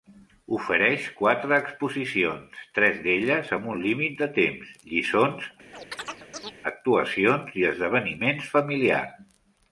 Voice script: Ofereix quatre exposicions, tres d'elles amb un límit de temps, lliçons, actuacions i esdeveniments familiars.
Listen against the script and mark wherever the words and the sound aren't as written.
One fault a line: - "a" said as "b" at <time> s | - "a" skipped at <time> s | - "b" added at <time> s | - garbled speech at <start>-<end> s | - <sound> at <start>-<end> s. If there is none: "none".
- chirp at 5.7-6.6 s